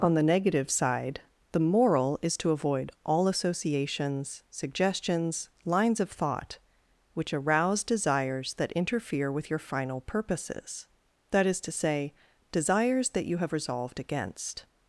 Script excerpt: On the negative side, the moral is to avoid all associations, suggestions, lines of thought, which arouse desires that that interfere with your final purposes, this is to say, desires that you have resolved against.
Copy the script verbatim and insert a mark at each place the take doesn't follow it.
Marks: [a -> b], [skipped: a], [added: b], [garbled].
On the negative side, the moral is to avoid all associations, suggestions, lines of thought, which arouse desires that [skipped: that] interfere with your final purposes, [this -> that] is to say, desires that you have resolved against.